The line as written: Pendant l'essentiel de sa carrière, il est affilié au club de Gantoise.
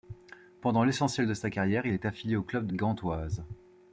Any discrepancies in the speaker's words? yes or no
no